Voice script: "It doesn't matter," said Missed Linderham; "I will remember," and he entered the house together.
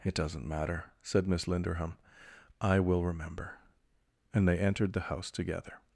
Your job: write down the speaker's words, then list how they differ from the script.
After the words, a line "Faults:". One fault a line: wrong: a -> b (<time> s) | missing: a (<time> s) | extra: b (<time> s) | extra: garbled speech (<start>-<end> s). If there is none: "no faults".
"It doesn't matter," said Miss Linderham; "I will remember," and they entered the house together.
Faults:
wrong: Missed -> Miss (1.3 s)
wrong: he -> they (4.5 s)